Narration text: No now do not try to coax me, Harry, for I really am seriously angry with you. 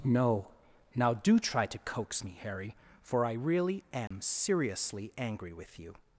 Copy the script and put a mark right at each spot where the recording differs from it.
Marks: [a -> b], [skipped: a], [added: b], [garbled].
No now do [skipped: not] try to coax me, Harry, for I really am seriously angry with you.